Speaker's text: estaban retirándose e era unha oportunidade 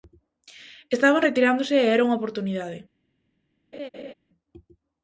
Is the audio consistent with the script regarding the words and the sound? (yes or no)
no